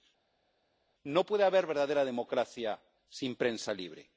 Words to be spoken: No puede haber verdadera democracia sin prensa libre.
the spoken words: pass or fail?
pass